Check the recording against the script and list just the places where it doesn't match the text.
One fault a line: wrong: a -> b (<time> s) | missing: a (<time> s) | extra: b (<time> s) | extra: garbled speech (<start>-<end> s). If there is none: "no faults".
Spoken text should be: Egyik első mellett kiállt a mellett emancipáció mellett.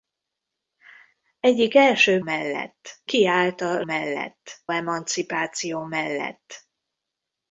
no faults